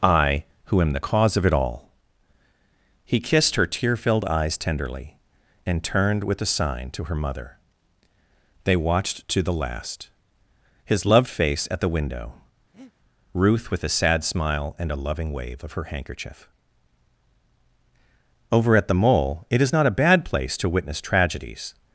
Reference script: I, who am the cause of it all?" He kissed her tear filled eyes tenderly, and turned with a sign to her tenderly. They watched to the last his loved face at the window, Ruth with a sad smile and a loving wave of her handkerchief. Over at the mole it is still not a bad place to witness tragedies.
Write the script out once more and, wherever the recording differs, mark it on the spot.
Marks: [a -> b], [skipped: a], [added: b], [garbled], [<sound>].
I, who am the cause of it all?" He kissed her tear filled eyes tenderly, and turned with a sign to her [tenderly. -> mother] They watched to the last his loved face at the window, [breath] Ruth with a sad smile and a loving wave of her handkerchief. Over at the mole it is [skipped: still] not a bad place to witness tragedies.